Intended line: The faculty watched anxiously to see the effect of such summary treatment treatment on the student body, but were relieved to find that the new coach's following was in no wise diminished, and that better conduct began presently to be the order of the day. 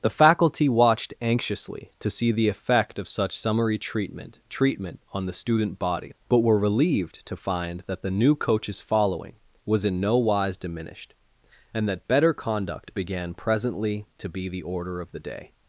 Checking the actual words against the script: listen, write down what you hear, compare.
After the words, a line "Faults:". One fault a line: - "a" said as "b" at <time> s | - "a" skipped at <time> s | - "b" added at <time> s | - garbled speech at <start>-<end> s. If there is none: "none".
The faculty watched anxiously to see the effect of such summary treatment treatment on the student body, but were relieved to find that the new coach's following was in no wise diminished, and that better conduct began presently to be the order of the day.
Faults:
none